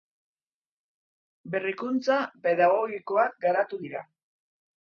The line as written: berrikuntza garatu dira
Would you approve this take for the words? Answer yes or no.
no